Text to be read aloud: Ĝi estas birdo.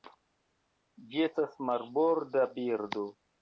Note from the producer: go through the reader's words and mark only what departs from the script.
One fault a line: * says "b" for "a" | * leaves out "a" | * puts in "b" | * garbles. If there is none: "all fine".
* puts in "marborda"